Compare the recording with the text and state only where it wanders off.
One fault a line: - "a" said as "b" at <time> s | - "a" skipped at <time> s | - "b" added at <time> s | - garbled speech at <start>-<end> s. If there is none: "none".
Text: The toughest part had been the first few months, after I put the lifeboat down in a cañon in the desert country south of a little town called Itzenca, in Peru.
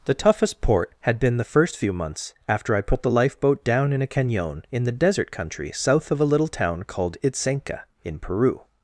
- "part" said as "port" at 0.6 s